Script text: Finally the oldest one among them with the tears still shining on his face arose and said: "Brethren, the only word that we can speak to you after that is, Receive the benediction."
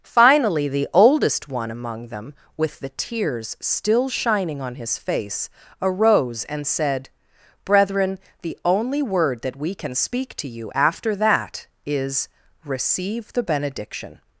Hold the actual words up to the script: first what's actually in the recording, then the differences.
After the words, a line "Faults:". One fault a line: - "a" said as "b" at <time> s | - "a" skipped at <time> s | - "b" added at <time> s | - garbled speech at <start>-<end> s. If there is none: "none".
Finally the oldest one among them with the tears still shining on his face arose and said: "Brethren, the only word that we can speak to you after that is, Receive the benediction."
Faults:
none